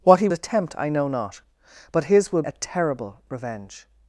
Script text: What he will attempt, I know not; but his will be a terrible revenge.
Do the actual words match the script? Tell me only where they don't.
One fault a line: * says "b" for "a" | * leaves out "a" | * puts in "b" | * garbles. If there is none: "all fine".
* leaves out "will"
* leaves out "be"